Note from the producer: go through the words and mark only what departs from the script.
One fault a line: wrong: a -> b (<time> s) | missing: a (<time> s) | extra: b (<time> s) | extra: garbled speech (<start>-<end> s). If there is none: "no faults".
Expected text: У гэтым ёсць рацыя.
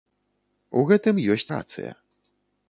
no faults